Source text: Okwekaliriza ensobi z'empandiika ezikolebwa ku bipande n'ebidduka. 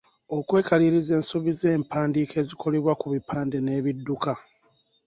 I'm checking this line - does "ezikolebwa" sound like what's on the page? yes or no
yes